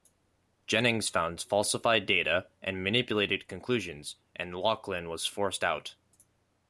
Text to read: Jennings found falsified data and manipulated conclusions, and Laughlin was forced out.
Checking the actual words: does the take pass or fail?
pass